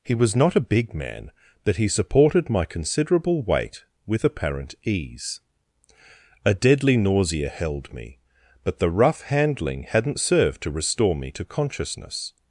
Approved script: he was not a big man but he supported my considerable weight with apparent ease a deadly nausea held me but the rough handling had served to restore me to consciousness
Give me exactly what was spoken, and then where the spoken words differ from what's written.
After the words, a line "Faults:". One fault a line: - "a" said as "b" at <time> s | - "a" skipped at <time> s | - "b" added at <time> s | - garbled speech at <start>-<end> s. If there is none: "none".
he was not a big man but he supported my considerable weight with apparent ease a deadly nausea held me but the rough handling hadn't served to restore me to consciousness
Faults:
- "had" said as "hadn't" at 9.8 s